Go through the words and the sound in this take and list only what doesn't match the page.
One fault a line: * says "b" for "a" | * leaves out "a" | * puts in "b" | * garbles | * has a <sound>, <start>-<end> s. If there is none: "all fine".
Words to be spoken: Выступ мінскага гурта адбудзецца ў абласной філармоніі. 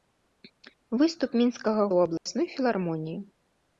* leaves out "гурта адбудзецца"
* has a dropout, 2.2-2.3 s